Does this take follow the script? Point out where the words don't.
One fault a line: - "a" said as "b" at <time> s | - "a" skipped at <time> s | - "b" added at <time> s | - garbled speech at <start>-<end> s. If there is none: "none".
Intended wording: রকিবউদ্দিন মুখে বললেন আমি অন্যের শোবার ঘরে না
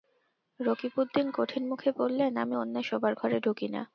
- "কঠিন" added at 1.3 s
- "ঢুকি" added at 3.4 s